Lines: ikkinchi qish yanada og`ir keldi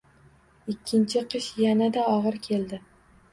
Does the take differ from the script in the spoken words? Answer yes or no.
no